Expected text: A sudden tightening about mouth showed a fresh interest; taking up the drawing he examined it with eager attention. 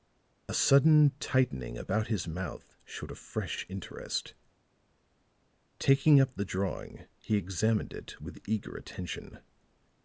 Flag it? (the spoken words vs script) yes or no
yes